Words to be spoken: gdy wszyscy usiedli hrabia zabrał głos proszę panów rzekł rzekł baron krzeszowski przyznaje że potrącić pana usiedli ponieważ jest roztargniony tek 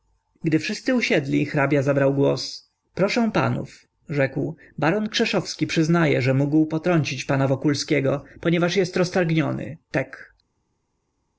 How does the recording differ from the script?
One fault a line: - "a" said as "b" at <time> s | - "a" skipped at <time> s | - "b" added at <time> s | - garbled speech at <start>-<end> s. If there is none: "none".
- "rzekł" skipped at 4.5 s
- "mógł" added at 6.3 s
- "usiedli" said as "wokulskiego" at 7.5 s